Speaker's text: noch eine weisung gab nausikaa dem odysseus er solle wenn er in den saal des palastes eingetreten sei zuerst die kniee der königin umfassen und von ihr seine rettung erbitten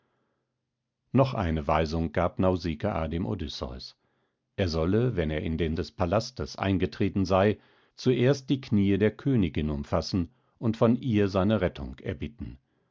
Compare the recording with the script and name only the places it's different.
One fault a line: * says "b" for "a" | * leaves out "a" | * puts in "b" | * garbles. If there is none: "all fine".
* leaves out "saal"